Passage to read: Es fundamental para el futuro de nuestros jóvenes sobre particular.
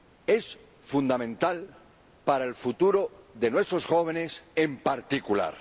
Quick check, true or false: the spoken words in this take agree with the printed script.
false